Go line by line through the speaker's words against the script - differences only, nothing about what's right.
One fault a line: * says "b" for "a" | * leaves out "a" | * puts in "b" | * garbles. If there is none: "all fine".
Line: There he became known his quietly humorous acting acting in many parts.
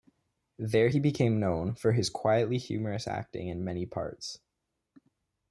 * puts in "for"
* leaves out "acting"